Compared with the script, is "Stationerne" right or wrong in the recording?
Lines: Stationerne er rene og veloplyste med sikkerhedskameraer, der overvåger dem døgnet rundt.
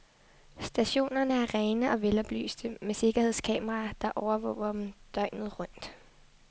right